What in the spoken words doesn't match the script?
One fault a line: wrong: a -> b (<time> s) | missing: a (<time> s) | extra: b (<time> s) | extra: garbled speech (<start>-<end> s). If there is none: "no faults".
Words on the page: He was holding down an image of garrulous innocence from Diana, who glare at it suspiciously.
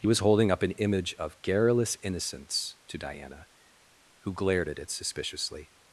wrong: down -> up (0.5 s)
wrong: from -> to (2.9 s)
wrong: glare -> glared (4.3 s)